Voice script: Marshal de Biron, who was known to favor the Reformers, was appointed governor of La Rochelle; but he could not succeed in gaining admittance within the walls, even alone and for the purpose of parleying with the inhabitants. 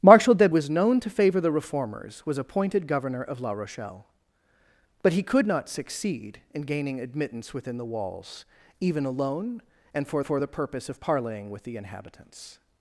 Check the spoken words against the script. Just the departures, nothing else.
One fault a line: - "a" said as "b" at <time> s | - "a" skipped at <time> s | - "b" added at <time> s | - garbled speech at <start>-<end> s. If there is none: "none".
- "Biron who" skipped at 0.5 s
- "for" added at 10.2 s